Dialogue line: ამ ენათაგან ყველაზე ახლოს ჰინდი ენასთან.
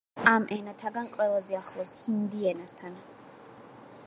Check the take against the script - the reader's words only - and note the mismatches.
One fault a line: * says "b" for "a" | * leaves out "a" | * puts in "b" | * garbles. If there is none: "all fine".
all fine